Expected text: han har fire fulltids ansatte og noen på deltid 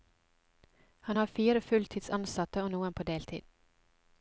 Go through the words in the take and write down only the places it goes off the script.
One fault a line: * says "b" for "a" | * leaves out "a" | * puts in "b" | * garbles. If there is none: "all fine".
all fine